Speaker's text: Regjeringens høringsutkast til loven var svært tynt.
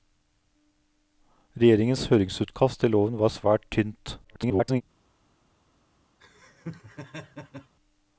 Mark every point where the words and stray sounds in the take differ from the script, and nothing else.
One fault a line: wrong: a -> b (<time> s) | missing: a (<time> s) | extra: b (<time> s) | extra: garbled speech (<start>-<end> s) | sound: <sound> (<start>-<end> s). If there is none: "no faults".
extra: garbled speech (4.2-4.8 s)
sound: laugh (6.2-7.7 s)